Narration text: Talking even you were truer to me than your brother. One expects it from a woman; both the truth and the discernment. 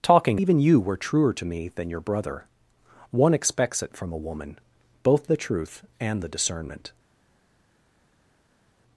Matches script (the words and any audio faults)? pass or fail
pass